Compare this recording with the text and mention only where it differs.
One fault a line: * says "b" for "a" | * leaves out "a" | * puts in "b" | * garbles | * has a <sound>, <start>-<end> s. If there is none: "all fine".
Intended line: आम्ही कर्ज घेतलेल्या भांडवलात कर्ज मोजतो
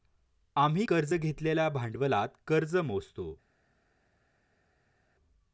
all fine